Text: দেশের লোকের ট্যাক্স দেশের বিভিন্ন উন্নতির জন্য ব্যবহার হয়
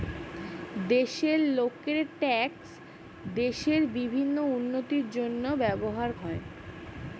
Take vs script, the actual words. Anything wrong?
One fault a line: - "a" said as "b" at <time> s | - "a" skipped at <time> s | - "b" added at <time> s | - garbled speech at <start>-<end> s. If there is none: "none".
none